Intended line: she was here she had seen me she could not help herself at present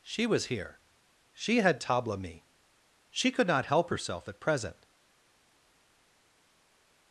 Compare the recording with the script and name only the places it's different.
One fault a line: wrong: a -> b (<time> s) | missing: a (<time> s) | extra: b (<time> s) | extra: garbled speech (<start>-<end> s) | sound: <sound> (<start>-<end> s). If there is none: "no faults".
wrong: seen -> tabla (1.8 s)